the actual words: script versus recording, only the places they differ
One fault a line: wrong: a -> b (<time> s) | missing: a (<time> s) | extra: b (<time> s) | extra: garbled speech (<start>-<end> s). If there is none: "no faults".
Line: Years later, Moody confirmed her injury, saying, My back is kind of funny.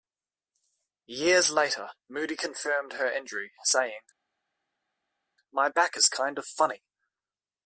no faults